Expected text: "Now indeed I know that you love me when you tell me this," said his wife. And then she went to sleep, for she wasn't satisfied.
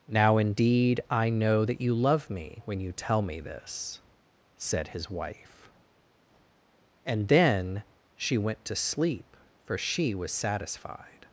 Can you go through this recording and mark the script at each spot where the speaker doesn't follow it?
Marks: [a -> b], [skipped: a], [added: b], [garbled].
"Now indeed I know that you love me when you tell me this," said his wife. And then she went to sleep, for she [wasn't -> was] satisfied.